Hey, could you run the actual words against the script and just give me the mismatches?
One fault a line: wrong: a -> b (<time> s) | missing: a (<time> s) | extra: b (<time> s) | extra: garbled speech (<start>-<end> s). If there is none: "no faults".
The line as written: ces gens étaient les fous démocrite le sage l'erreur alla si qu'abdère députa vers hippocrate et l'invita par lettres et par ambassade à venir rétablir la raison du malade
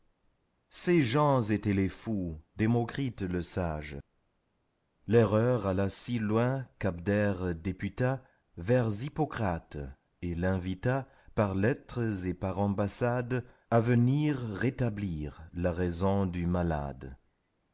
extra: loin (6.2 s)